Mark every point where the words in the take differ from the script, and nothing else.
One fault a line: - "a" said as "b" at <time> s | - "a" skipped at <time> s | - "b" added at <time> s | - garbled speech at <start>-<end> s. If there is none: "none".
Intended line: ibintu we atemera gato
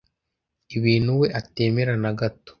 - "na" added at 2.0 s